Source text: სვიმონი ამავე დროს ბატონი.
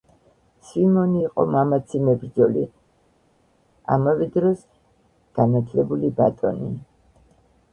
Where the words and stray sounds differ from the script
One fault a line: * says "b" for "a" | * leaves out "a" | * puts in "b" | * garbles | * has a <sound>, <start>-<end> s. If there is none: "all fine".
* puts in "იყო მამაცი მებრᲫოლი"
* puts in "განაᲗლებული"